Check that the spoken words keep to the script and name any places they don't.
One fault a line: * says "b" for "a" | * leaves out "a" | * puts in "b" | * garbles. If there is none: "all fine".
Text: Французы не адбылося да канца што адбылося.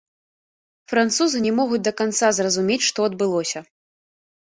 * says "могуць" for "адбылося"
* puts in "зразумець"